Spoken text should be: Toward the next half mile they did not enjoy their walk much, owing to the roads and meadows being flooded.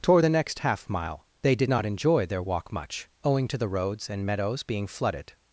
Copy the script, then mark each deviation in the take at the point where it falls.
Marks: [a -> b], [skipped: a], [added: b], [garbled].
Toward the next half mile they did not enjoy their walk much, owing to the roads and meadows being flooded.